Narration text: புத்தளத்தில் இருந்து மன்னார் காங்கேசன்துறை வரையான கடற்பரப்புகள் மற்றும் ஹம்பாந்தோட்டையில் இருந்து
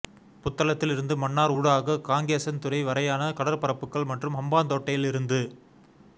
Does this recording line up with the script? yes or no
no